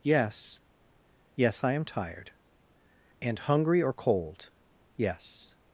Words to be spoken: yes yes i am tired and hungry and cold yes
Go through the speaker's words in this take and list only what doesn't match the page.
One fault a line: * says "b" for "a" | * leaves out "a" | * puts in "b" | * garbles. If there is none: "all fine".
* says "or" for "and"